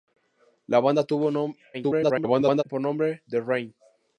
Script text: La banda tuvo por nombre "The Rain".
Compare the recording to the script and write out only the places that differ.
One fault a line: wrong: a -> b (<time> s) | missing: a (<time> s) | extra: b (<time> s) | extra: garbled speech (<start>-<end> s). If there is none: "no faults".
extra: garbled speech (1.7-2.6 s)